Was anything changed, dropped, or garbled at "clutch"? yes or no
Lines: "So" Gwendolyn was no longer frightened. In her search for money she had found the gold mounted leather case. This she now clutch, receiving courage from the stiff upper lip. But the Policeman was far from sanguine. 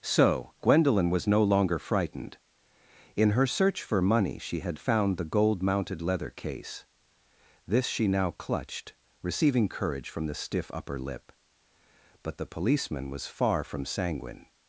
yes